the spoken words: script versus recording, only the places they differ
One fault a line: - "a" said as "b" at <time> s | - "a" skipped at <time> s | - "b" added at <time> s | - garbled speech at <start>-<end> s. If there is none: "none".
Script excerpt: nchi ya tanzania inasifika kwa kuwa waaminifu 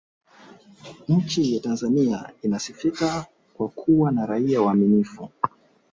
- "na raia" added at 4.1 s